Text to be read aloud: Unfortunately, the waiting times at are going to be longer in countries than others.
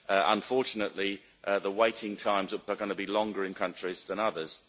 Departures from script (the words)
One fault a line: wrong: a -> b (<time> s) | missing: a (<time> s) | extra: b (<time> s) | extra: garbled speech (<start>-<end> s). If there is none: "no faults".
no faults